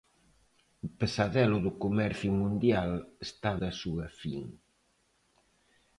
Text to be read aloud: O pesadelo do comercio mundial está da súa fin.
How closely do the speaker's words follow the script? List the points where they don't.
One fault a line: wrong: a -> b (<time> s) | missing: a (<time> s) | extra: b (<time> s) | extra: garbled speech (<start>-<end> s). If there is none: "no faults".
no faults